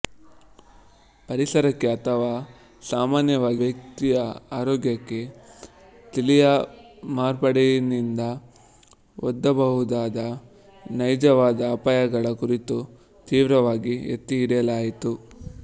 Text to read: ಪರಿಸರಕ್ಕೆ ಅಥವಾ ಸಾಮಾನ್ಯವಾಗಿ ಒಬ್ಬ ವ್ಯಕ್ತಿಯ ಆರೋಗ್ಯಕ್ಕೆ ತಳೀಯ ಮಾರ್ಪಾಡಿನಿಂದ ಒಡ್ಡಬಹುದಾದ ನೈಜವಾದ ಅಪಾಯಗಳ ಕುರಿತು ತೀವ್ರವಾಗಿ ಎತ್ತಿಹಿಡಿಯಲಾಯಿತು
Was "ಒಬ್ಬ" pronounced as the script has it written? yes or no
no